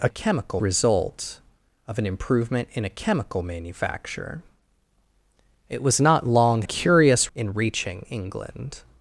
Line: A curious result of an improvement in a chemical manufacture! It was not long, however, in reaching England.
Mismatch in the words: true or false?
true